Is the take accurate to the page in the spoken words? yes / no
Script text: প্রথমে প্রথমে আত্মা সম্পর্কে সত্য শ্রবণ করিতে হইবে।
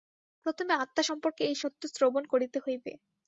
no